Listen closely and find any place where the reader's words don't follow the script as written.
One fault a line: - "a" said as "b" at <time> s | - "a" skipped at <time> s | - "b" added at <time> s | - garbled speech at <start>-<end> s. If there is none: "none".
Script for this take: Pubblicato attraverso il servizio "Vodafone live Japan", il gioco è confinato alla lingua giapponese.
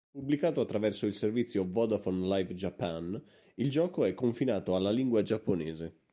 none